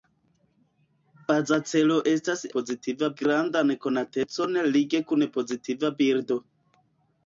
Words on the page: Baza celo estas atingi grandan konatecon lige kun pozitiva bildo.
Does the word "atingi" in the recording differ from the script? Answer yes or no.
yes